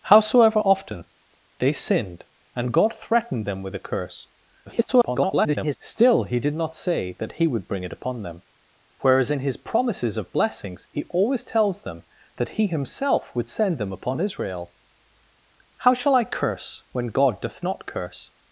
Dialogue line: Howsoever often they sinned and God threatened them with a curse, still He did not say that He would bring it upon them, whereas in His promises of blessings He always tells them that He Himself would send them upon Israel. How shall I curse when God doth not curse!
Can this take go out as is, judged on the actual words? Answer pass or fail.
fail